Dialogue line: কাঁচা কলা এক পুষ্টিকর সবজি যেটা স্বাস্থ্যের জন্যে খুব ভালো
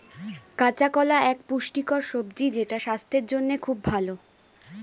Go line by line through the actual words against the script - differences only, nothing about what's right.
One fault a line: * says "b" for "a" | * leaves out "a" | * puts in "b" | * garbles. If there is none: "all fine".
all fine